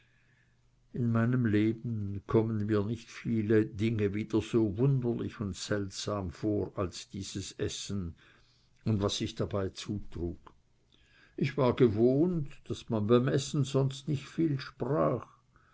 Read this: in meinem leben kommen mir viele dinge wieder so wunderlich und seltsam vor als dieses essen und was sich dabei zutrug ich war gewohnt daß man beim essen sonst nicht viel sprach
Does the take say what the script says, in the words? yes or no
no